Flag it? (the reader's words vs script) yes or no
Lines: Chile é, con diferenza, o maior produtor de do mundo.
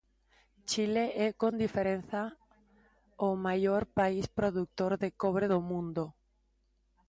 yes